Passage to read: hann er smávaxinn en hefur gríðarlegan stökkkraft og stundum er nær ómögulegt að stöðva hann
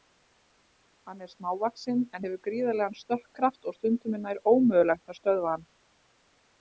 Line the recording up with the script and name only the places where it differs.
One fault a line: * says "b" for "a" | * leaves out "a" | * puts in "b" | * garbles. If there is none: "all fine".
all fine